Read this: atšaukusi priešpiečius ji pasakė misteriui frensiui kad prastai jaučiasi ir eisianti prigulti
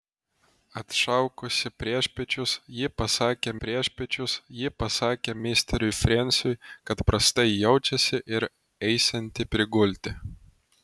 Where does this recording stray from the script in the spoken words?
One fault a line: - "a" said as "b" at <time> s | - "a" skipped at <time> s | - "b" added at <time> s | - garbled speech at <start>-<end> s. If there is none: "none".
- "priešpiečius ji pasakė" added at 3.6 s